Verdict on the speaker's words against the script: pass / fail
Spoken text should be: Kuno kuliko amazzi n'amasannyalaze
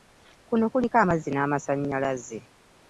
pass